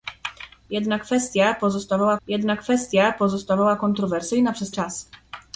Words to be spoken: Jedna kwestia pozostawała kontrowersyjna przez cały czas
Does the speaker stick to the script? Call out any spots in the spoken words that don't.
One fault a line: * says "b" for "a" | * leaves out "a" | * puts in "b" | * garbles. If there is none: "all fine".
* puts in "jedna kwestia pozostawała"
* leaves out "cały"